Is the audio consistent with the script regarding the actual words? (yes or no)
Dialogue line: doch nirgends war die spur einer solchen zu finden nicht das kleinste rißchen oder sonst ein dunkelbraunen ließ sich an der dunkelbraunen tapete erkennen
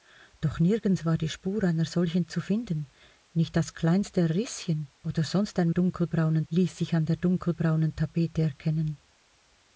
yes